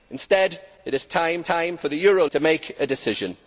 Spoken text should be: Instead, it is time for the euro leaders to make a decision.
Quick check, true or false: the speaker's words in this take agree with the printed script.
false